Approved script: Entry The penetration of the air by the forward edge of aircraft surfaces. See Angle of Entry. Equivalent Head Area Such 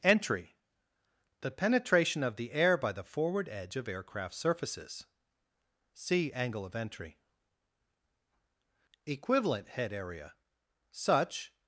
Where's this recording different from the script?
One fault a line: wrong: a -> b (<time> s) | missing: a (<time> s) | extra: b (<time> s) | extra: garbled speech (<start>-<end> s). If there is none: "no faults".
no faults